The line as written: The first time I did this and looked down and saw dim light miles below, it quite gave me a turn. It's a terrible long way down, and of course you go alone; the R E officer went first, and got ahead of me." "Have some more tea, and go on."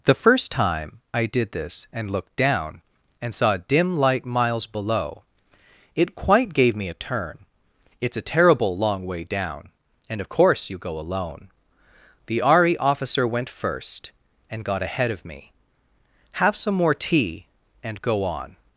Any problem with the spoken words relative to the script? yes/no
no